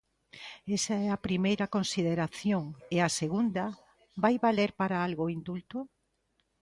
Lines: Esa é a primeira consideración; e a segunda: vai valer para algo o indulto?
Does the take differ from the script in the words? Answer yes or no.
no